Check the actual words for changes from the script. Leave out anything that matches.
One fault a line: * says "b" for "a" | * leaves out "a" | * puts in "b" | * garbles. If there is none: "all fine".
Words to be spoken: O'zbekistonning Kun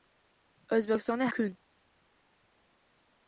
all fine